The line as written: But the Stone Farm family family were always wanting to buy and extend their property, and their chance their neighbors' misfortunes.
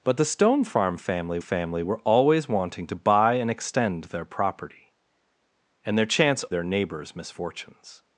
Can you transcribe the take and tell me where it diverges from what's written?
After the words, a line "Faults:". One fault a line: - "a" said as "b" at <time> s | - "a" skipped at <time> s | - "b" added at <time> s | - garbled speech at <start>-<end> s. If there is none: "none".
But the Stone Farm family family were always wanting to buy and extend their property, and their chance their neighbors' misfortunes.
Faults:
none